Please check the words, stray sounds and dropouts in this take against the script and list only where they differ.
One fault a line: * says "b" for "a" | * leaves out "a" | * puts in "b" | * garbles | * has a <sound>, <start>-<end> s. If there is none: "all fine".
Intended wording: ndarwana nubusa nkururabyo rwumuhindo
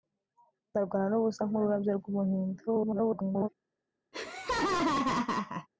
* garbles
* has a laugh, 4.1-5.7 s